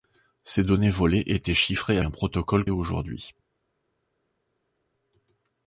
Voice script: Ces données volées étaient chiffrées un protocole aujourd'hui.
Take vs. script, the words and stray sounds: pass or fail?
pass